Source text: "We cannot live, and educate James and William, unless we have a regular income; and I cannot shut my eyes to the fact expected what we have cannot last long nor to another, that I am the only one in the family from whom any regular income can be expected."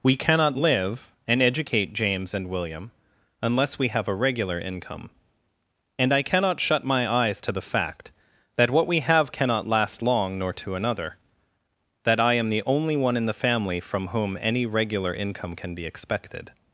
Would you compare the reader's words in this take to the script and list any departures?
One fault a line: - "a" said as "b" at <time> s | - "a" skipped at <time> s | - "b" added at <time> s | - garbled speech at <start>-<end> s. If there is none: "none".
- "expected" said as "that" at 8.6 s